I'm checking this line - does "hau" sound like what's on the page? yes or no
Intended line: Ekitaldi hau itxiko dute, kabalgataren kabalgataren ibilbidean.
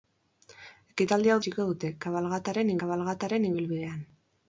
yes